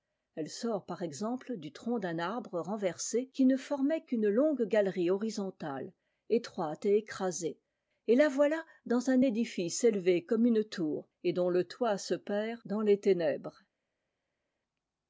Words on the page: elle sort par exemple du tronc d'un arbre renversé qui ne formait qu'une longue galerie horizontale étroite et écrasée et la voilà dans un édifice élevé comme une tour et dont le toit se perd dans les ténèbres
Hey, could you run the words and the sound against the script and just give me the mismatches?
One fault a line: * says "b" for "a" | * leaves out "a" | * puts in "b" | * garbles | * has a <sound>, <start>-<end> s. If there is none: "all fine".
all fine